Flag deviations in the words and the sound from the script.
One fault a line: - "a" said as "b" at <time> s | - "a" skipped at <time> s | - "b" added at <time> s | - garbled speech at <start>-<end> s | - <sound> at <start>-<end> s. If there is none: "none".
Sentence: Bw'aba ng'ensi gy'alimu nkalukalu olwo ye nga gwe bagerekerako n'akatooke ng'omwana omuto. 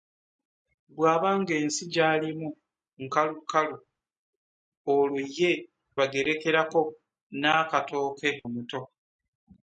- "nga gwe" skipped at 5.5 s
- "ng'omwana" skipped at 8.3 s